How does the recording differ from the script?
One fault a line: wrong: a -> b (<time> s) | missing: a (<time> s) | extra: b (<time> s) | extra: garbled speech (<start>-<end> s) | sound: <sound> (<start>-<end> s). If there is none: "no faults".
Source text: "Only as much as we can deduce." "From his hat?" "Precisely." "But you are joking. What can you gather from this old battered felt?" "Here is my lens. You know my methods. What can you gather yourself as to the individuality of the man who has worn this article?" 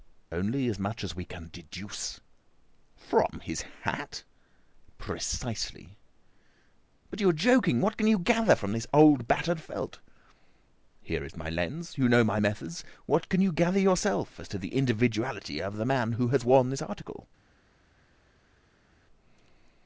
no faults